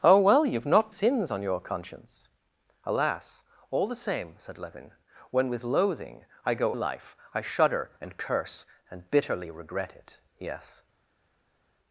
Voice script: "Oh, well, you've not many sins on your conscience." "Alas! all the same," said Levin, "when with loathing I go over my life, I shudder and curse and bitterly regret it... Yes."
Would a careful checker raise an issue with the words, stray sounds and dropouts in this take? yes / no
yes